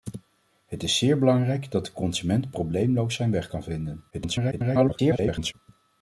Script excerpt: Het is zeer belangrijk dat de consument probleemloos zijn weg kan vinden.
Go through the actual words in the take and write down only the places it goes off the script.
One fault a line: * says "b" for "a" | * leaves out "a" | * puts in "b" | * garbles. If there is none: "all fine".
* garbles